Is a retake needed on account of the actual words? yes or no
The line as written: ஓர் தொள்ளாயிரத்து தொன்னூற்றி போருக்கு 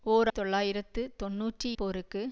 no